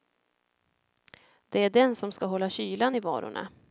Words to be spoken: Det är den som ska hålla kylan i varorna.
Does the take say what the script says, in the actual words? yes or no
yes